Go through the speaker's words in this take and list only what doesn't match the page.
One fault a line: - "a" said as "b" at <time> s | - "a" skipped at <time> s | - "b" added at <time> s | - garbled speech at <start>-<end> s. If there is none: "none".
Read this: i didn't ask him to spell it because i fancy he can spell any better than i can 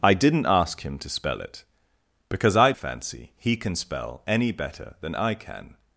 none